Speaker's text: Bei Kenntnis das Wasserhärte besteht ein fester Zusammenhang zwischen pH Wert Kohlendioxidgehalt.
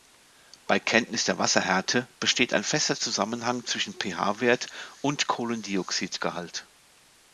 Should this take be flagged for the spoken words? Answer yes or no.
yes